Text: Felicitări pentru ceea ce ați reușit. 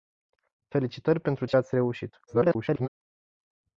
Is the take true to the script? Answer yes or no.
no